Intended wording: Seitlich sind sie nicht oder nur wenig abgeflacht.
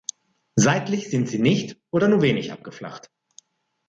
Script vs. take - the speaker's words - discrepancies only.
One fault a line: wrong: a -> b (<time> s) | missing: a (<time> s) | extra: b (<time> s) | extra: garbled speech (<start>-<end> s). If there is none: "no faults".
no faults